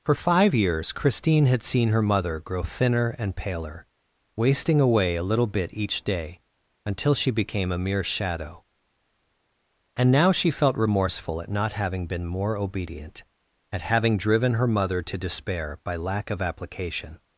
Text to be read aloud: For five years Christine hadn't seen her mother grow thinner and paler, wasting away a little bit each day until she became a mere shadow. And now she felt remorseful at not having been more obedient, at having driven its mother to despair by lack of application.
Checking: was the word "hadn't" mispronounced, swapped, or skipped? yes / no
yes